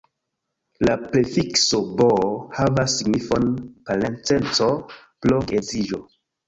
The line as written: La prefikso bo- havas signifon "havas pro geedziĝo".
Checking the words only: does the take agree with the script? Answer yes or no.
no